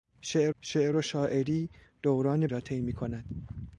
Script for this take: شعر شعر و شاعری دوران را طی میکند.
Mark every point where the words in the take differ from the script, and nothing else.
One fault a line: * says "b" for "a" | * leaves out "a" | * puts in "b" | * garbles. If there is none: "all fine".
all fine